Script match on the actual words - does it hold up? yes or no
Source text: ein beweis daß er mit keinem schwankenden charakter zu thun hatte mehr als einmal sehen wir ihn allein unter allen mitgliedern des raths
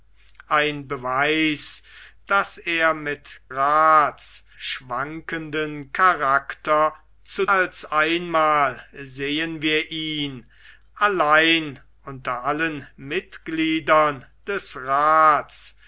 no